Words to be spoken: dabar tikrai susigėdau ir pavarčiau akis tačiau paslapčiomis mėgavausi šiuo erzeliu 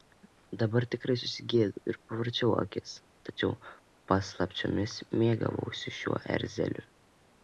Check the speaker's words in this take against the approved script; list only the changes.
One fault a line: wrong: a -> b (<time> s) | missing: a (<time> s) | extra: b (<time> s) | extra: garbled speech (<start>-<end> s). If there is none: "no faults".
no faults